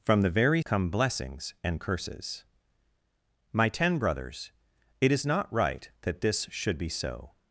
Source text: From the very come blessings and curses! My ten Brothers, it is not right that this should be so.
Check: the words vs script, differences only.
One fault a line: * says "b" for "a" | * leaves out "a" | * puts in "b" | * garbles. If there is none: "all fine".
all fine